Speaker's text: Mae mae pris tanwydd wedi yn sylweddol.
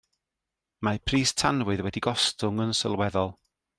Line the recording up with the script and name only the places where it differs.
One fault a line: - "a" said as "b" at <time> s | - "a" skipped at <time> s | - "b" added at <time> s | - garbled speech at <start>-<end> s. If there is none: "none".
- "mae" skipped at 1.0 s
- "gostwng" added at 2.1 s